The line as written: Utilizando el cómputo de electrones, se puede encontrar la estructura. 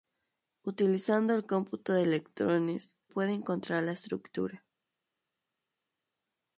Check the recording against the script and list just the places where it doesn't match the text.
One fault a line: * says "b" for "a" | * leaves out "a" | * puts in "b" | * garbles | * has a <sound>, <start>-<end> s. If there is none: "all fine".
* leaves out "se"